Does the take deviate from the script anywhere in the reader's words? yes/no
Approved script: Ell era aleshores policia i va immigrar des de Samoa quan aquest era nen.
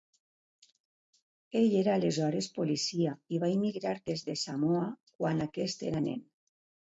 no